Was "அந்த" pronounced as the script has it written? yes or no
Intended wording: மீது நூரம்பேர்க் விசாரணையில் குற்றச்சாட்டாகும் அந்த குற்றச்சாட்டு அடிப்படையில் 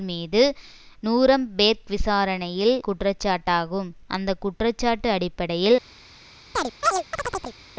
yes